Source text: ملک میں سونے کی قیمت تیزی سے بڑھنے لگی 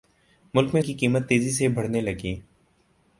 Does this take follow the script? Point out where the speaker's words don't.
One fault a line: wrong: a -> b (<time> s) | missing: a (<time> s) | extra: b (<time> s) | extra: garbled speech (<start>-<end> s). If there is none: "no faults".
missing: سونے (0.8 s)